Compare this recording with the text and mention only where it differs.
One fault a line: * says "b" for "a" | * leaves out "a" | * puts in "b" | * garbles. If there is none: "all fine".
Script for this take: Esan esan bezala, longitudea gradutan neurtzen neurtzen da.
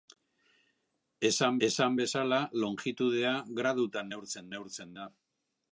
all fine